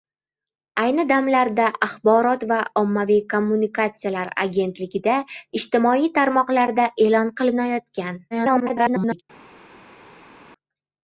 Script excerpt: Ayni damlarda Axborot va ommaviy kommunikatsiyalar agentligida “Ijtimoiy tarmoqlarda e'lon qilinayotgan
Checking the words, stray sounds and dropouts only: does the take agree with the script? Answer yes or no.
no